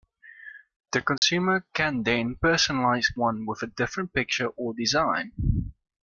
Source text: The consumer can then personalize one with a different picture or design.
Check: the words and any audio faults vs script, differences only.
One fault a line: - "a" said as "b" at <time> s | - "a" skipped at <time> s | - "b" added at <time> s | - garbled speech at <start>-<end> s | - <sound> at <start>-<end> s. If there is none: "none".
- dropout at 1.2-1.2 s